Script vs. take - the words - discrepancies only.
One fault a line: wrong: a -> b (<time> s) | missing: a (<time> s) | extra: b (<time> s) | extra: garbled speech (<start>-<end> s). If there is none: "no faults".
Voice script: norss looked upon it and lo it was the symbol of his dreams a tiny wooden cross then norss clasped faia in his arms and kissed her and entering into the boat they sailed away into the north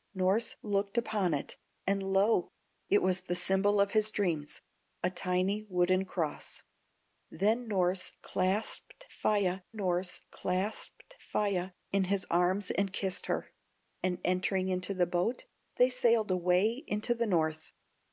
extra: norss clasped faia (9.8 s)